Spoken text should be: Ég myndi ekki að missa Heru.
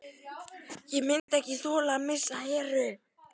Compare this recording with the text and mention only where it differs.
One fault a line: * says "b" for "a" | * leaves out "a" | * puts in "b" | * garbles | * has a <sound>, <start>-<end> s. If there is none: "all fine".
* has a dropout, 1.2-1.3 s
* puts in "þola"